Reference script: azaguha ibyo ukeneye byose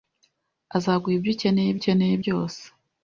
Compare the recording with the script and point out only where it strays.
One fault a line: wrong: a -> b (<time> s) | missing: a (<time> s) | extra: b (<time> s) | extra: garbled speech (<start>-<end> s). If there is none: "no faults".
extra: ukeneye (1.8 s)